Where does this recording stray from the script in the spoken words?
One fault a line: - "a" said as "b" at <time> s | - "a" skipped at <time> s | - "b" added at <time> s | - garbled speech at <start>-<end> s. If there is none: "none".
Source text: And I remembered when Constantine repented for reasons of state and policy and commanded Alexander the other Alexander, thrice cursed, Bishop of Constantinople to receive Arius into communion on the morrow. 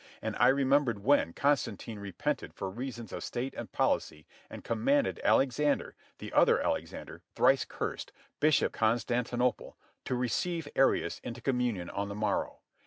- "of" skipped at 8.8 s